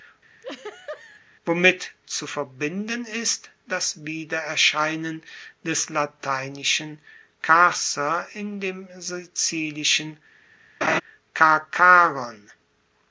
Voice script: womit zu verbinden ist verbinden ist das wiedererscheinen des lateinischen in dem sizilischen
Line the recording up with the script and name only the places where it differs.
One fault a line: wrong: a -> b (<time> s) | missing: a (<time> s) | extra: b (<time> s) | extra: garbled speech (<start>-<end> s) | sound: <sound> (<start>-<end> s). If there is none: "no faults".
sound: laugh (0.4-1.2 s)
missing: verbinden ist (3.5 s)
extra: carcer (7.4 s)
sound: laugh (10.8-11.0 s)